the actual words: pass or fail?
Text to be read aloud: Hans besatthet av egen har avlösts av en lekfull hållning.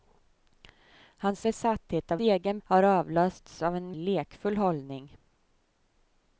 pass